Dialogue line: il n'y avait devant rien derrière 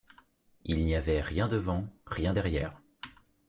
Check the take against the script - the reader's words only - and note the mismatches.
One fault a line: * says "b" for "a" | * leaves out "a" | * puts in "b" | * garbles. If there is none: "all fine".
* puts in "rien"